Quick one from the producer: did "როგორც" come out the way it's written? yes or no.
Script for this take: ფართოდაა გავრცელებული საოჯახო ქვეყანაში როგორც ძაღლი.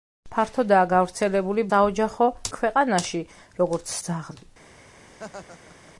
yes